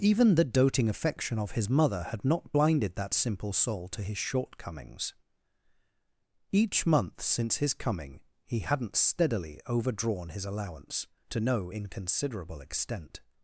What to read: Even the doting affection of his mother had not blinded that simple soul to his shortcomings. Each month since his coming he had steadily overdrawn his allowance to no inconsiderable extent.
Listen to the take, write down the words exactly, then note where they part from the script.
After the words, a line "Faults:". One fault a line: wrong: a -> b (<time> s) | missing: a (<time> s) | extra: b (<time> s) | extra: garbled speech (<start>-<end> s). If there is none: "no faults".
Even the doting affection of his mother had not blinded that simple soul to his shortcomings. Each month since his coming he hadn't steadily overdrawn his allowance to no inconsiderable extent.
Faults:
wrong: had -> hadn't (8.6 s)